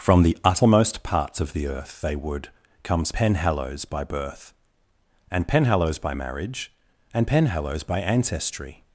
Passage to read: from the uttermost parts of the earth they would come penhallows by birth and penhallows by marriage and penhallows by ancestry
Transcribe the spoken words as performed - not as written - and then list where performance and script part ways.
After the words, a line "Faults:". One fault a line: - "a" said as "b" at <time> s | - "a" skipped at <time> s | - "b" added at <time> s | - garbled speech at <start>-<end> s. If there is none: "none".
from the uttermost parts of the earth they would comes penhallows by birth and penhallows by marriage and penhallows by ancestry
Faults:
- "come" said as "comes" at 2.8 s